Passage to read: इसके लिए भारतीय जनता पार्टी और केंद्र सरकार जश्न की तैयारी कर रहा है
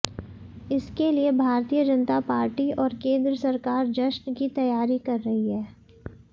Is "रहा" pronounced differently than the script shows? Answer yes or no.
yes